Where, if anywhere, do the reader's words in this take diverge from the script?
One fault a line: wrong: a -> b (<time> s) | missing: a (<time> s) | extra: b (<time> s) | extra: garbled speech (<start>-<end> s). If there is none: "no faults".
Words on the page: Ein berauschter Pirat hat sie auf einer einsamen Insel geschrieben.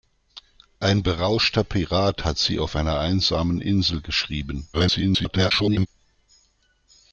extra: garbled speech (4.7-5.9 s)